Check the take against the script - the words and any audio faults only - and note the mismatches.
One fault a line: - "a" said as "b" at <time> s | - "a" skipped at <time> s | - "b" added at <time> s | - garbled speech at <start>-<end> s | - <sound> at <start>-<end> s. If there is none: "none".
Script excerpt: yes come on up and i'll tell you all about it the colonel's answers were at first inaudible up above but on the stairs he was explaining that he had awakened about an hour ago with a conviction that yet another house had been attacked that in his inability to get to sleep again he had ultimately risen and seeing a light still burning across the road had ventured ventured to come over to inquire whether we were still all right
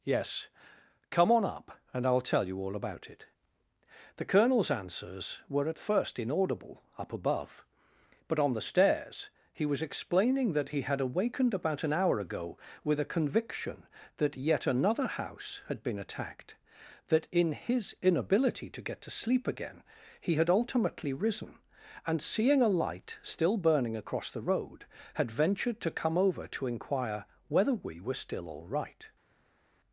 - "ventured" skipped at 25.8 s